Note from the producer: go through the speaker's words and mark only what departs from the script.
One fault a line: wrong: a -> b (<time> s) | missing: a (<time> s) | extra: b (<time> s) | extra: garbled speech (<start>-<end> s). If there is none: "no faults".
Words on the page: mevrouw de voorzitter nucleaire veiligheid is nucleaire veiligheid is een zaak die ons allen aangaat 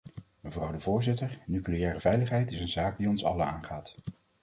missing: nucleaire veiligheid is (2.6 s)